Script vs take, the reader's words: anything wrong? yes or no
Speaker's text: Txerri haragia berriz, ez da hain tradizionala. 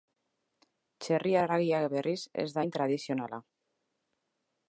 no